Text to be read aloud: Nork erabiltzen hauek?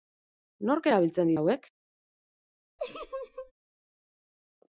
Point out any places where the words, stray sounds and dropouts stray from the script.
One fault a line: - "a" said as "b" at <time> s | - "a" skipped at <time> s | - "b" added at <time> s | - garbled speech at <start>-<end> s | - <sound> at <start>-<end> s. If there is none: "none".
- laugh at 2.8-3.5 s